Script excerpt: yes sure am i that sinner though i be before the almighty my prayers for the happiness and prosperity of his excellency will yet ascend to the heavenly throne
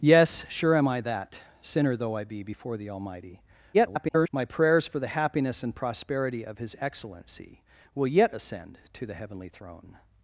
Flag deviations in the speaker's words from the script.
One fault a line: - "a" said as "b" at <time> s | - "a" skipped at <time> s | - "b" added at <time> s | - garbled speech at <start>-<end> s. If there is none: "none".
- garbled speech at 3.7-4.3 s